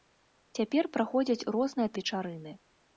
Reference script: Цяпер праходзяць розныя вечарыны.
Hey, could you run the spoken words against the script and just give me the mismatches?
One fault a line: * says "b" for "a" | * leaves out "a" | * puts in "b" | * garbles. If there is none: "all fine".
all fine